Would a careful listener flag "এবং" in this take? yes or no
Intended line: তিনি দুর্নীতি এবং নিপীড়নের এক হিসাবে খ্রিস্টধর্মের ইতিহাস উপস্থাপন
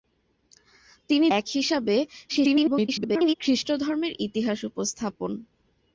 yes